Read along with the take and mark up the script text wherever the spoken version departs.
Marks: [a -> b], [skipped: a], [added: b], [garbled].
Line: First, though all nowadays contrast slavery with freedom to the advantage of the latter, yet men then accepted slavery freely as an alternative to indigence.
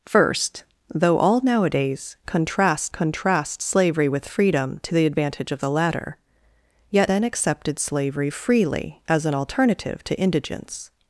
First, though all nowadays contrast [added: contrast] slavery with freedom to the advantage of the latter, yet [skipped: men] then accepted slavery freely as an alternative to indigence.